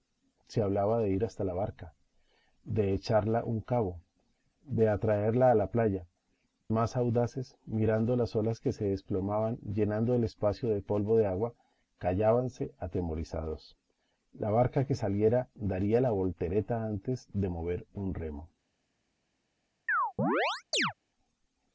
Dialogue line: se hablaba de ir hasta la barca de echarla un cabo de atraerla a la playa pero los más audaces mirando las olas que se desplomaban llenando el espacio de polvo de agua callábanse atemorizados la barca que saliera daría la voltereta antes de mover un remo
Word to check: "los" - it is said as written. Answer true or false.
false